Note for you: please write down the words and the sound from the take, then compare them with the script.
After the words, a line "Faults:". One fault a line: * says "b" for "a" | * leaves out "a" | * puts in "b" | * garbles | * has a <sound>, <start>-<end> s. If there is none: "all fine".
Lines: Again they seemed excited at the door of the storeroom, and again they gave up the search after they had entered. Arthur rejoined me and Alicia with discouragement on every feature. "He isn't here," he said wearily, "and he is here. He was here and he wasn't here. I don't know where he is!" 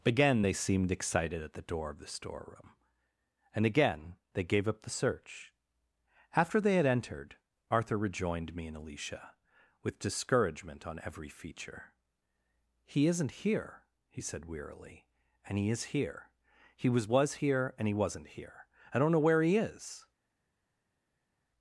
Again they seemed excited at the door of the storeroom, and again they gave up the search after they had entered. Arthur rejoined me and Alicia with discouragement on every feature. "He isn't here," he said wearily, "and he is here. He was was here and he wasn't here. I don't know where he is!"
Faults:
* puts in "was"